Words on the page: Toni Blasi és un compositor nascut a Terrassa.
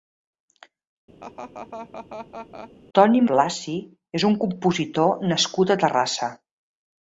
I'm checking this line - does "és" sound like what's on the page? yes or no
yes